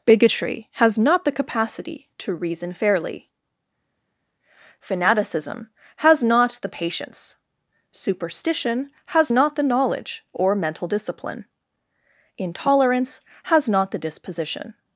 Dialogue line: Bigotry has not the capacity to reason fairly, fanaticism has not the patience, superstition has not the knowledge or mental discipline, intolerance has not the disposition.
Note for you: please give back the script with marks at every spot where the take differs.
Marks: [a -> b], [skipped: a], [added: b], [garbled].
Bigotry has not the capacity to reason fairly, fanaticism has not the patience, superstition has not the knowledge or mental discipline, intolerance has not the disposition.